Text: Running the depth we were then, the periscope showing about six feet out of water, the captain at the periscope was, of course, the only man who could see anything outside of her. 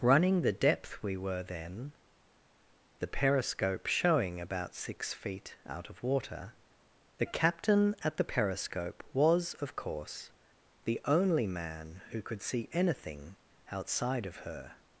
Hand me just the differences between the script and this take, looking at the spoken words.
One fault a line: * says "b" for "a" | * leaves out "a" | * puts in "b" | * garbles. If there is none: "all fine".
all fine